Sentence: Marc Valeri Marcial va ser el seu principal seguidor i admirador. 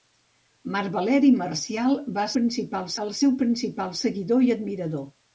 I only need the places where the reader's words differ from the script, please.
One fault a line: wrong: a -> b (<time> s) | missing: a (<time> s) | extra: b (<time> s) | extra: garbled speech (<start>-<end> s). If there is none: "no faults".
wrong: ser -> principal (2.4 s)